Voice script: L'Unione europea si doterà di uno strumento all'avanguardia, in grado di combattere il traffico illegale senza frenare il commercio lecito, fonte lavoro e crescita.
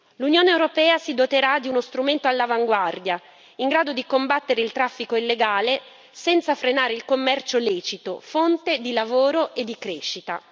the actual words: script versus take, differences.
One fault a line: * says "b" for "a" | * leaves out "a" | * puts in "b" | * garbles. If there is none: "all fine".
* puts in "di"
* puts in "di"